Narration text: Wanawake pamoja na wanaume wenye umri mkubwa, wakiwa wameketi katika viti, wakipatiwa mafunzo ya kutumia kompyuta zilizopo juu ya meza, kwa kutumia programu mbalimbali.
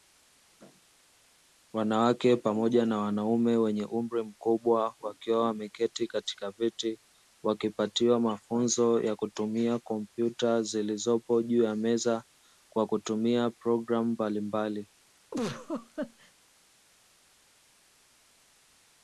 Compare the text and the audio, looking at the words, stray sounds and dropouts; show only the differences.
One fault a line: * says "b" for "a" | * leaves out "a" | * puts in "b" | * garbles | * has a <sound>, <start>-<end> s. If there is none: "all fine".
* has a laugh, 15.3-16.3 s